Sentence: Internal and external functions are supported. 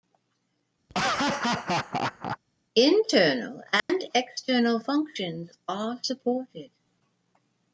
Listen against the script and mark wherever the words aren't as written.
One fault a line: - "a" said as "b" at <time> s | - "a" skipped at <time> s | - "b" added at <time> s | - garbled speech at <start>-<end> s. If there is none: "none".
none